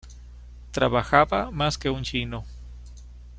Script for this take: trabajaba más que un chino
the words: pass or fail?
pass